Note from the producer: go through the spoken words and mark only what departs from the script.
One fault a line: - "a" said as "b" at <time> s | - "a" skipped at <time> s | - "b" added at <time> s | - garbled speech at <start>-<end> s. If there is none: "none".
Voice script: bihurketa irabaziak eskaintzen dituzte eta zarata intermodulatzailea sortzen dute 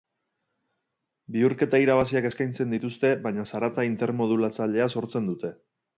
- "eta" said as "baina" at 3.2 s